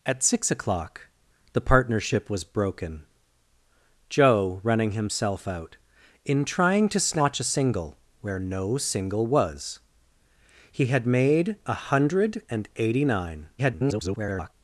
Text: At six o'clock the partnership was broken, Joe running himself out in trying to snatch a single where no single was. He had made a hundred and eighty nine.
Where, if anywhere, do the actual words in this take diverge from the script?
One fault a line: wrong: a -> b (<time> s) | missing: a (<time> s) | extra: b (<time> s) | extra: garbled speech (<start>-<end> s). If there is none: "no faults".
extra: garbled speech (13.6-14.5 s)